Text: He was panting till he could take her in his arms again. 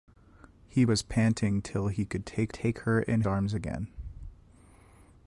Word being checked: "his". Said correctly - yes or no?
no